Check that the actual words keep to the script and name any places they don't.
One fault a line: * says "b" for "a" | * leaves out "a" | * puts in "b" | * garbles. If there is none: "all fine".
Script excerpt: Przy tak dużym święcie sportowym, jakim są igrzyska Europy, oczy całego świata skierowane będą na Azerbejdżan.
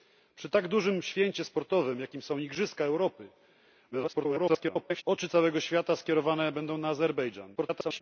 * garbles
* garbles